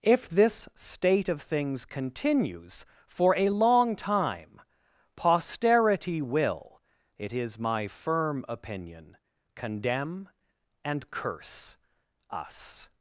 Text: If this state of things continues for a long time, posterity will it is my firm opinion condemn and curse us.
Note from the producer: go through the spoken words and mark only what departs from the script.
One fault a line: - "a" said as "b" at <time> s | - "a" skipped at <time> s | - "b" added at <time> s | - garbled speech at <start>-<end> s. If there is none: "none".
none